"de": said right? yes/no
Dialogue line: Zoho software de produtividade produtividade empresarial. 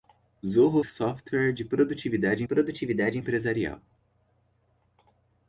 yes